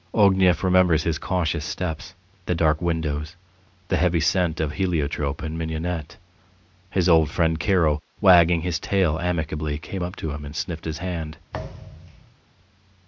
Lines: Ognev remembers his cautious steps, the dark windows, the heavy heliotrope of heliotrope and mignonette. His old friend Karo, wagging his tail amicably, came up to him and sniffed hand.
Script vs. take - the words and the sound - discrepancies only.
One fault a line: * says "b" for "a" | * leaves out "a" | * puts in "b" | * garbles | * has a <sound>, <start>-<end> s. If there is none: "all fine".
* says "scent" for "heliotrope"
* puts in "his"
* has a thud, 11.5-12.3 s